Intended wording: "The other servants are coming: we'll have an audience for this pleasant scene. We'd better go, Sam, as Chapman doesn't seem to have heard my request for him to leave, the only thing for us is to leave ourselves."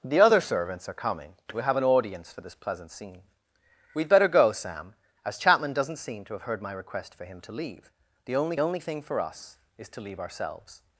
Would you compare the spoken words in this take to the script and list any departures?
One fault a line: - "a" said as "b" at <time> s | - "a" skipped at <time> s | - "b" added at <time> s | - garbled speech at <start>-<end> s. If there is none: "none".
- "only" added at 8.6 s